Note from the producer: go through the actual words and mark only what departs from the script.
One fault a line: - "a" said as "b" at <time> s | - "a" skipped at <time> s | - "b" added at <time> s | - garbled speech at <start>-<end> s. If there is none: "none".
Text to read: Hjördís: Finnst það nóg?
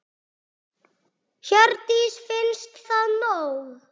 none